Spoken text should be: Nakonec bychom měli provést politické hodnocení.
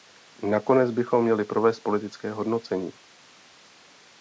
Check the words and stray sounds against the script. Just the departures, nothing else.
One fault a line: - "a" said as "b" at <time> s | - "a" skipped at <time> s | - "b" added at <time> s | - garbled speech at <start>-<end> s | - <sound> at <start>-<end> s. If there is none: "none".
none